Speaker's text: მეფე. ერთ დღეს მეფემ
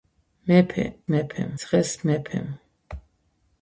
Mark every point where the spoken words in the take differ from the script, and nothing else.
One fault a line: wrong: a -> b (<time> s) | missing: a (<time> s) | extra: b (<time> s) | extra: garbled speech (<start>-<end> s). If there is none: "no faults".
wrong: ერთ -> მეფემ (1.1 s)